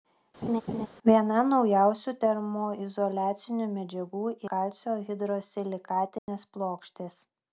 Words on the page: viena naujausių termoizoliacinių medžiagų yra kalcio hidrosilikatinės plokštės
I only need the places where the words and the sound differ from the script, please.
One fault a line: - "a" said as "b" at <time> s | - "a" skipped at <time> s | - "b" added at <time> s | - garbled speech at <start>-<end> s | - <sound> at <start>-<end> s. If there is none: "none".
- laugh at 0.4-0.9 s
- "yra" skipped at 4.2 s
- dropout at 6.2-6.3 s